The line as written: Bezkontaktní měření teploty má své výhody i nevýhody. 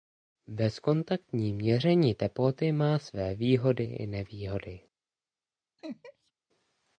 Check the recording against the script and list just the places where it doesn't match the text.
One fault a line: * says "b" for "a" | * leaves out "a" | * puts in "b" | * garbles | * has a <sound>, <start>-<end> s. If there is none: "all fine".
* has a laugh, 5.8-6.3 s